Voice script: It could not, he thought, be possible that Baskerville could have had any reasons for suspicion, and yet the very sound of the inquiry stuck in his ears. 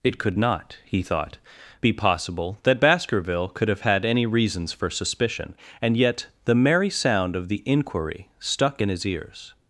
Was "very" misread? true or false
true